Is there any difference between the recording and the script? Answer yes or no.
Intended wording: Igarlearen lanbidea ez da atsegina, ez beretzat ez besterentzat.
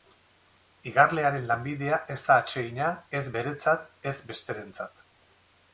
no